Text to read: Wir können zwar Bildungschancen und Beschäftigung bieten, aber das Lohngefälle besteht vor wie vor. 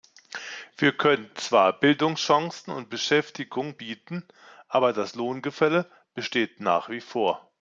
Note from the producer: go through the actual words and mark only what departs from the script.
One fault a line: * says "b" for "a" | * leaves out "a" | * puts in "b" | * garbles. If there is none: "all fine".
* says "nach" for "vor"